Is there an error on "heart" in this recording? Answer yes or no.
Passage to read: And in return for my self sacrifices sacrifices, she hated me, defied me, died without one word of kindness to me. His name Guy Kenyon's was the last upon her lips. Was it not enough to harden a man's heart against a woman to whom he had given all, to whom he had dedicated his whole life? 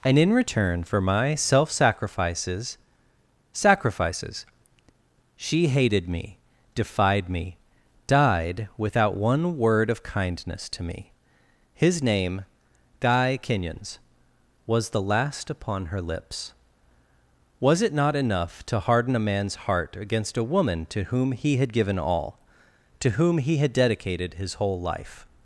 no